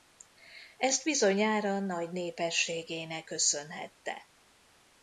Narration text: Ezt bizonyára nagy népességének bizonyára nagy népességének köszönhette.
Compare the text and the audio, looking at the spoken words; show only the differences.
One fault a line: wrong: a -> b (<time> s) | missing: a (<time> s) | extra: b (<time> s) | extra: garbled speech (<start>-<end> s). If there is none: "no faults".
missing: bizonyára nagy népességének (3.3 s)